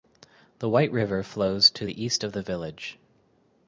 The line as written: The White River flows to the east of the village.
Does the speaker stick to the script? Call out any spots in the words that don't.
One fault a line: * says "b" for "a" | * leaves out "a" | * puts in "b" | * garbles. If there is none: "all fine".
all fine